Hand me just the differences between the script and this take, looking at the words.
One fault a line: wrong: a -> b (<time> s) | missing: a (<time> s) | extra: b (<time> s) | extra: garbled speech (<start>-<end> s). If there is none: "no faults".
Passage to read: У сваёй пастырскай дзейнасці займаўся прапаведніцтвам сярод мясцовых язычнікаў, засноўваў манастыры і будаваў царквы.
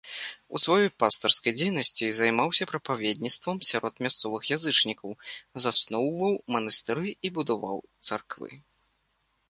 no faults